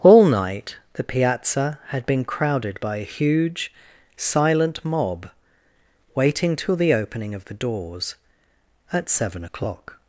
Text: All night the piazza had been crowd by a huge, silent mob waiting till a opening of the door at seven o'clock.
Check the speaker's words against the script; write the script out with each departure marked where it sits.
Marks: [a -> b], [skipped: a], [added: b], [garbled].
All night the piazza had been [crowd -> crowded] by a huge, silent mob waiting till [a -> the] opening of the [door -> doors] at seven o'clock.